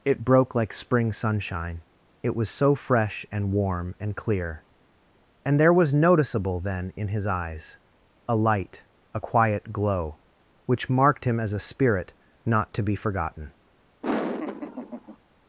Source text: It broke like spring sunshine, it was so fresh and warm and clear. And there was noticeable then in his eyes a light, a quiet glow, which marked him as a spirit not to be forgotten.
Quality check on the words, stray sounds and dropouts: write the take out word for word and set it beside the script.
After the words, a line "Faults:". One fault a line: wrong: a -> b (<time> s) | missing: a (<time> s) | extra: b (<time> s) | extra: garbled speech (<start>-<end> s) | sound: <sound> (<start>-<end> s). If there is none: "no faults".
It broke like spring sunshine, it was so fresh and warm and clear. And there was noticeable then in his eyes a light, a quiet glow, which marked him as a spirit not to be forgotten.
Faults:
sound: laugh (14.0-15.2 s)